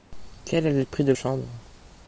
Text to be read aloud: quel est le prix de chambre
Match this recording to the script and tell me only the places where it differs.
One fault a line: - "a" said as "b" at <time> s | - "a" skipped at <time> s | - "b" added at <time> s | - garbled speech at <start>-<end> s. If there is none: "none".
none